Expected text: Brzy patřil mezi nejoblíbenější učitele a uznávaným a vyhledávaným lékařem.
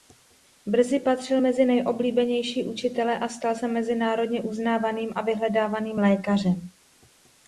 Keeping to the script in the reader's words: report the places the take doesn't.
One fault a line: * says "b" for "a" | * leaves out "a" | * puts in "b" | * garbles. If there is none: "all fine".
* puts in "stal se mezinárodně"